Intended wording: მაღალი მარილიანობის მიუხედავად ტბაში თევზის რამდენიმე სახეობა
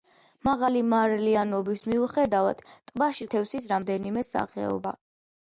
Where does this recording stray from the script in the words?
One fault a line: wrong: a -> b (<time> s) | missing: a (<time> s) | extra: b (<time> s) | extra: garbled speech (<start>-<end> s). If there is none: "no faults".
no faults